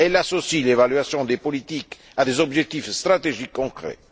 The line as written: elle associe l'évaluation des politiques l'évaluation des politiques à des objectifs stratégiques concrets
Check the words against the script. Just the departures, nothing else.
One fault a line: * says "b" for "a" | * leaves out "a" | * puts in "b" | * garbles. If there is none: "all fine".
* leaves out "l'évaluation des politiques"